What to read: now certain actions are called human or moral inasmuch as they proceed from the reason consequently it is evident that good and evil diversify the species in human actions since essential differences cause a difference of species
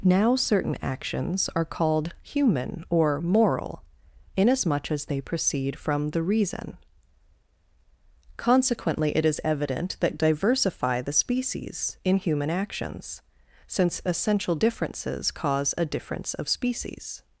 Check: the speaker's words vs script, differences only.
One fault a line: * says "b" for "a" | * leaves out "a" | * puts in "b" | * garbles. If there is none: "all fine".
* leaves out "good and evil"